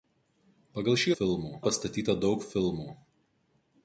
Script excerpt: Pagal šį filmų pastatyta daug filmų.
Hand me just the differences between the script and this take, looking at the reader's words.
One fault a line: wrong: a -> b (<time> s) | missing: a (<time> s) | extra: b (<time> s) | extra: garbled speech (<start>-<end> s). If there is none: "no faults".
no faults